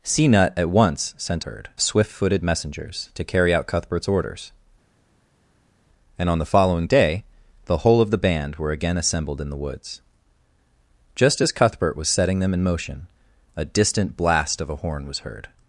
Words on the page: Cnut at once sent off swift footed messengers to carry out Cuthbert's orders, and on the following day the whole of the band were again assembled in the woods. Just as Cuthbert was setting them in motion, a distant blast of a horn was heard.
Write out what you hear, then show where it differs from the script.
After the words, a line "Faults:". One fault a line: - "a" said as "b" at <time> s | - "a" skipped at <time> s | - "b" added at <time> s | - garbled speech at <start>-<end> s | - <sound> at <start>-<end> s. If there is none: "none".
Cnut at once sent heard swift footed messengers to carry out Cuthbert's orders, and on the following day the whole of the band were again assembled in the woods. Just as Cuthbert was setting them in motion, a distant blast of a horn was heard.
Faults:
- "off" said as "heard" at 1.4 s